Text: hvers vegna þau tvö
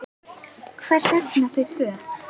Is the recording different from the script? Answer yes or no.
no